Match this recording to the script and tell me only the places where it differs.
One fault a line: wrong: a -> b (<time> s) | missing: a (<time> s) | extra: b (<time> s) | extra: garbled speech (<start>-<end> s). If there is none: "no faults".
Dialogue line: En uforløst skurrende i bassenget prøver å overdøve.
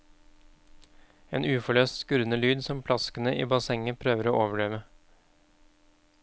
extra: lyd som plaskene (2.4 s)